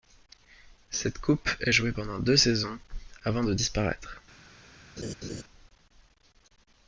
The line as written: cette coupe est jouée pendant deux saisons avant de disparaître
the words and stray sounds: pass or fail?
fail